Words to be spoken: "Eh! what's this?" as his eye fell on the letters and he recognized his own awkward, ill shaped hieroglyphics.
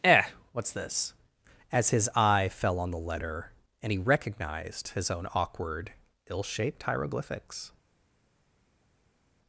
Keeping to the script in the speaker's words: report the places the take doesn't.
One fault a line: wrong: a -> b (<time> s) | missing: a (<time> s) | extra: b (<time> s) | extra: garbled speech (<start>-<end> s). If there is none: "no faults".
wrong: letters -> letter (3.0 s)